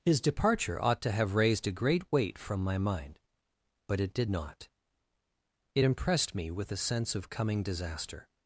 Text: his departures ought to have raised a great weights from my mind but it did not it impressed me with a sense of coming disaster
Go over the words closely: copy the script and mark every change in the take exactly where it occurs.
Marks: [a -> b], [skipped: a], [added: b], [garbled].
his [departures -> departure] ought to have raised a great [weights -> weight] from my mind but it did not it impressed me with a sense of coming disaster